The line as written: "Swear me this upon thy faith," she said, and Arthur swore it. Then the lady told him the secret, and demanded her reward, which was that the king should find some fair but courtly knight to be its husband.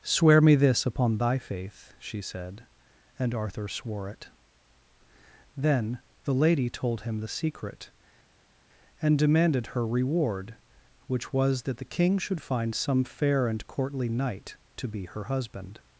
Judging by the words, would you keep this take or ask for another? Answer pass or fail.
fail